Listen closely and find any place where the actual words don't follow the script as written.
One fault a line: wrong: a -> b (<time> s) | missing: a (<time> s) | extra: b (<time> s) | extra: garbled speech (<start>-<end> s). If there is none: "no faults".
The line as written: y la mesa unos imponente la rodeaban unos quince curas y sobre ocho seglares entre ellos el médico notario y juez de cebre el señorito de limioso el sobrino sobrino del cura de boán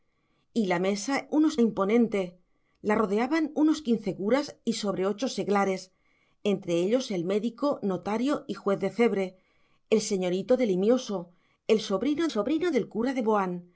no faults